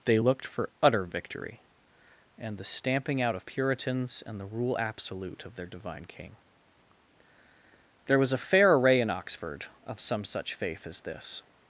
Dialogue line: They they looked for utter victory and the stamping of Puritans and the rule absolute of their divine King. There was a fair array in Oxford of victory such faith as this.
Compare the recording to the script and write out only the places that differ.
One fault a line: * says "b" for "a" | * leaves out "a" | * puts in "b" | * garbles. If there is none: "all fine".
* leaves out "they"
* puts in "out"
* says "some" for "victory"